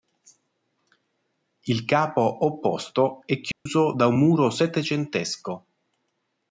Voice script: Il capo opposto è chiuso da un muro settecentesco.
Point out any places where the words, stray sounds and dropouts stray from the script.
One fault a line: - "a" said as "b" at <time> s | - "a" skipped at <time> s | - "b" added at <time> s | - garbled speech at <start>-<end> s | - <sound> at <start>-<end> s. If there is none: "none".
- dropout at 3.5-3.7 s